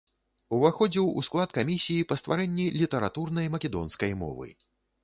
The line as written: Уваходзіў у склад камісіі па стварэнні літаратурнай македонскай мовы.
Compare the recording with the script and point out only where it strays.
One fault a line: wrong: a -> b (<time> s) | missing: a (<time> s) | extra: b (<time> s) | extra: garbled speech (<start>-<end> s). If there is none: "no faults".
no faults